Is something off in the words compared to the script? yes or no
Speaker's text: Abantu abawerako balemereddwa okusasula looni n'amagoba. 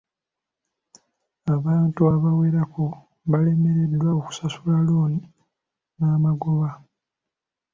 no